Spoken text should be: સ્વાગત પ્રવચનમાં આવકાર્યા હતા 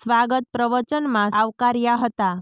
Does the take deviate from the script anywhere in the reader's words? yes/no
no